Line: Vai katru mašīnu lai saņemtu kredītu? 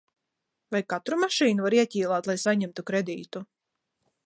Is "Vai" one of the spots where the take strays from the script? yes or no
no